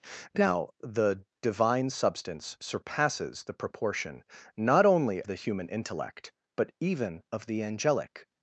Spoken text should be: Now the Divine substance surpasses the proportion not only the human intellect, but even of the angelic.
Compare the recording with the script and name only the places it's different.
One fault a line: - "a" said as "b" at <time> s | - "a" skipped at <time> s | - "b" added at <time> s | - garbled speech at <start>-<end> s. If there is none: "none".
none